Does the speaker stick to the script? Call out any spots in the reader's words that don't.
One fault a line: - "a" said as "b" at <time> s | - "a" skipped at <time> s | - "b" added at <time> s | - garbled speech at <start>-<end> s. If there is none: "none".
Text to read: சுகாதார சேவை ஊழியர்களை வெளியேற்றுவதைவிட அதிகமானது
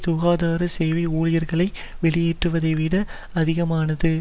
none